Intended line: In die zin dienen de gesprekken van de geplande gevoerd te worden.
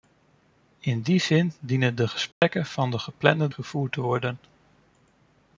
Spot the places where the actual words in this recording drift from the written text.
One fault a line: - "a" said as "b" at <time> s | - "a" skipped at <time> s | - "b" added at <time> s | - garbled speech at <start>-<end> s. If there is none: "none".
none